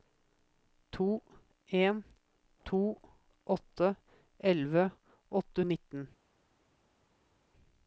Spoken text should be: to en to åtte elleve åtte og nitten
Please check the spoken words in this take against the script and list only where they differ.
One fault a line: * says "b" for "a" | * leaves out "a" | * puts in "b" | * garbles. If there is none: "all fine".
all fine